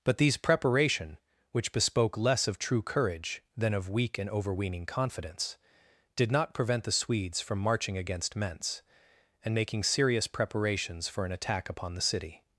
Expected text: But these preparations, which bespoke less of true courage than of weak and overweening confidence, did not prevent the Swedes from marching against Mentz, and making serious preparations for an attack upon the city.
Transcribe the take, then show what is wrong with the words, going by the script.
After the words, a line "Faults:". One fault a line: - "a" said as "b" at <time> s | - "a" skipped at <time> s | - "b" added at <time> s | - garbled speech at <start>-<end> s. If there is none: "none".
But these preparation, which bespoke less of true courage than of weak and overweening confidence, did not prevent the Swedes from marching against Mentz, and making serious preparations for an attack upon the city.
Faults:
- "preparations" said as "preparation" at 0.4 s